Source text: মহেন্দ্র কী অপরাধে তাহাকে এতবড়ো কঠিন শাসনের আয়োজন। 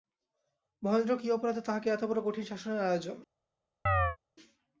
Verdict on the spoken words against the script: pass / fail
pass